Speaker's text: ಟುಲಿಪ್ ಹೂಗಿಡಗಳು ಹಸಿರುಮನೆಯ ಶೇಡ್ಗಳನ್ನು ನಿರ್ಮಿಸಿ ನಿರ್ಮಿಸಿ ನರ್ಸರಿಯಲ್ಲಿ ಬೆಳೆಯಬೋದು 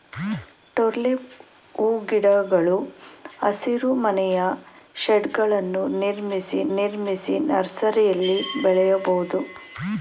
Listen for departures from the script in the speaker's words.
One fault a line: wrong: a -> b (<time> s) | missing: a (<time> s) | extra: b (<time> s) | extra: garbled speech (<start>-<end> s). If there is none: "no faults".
no faults